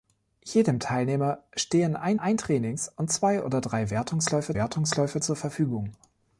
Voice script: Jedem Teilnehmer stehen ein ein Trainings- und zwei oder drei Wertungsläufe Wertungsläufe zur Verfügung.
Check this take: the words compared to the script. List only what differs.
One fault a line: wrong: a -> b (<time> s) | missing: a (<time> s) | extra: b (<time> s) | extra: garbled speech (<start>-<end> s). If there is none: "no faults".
no faults